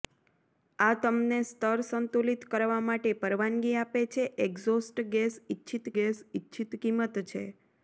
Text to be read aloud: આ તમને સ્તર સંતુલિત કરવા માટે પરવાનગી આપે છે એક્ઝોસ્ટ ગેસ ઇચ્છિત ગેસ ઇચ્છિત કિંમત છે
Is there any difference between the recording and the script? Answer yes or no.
no